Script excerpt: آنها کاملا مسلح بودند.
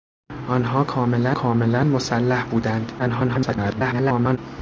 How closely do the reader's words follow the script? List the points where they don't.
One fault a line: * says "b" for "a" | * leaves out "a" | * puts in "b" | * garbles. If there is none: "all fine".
* puts in "کاملا"
* garbles